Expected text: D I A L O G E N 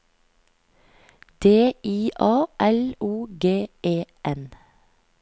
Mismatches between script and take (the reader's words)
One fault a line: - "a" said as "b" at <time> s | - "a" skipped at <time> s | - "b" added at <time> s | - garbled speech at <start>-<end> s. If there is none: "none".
none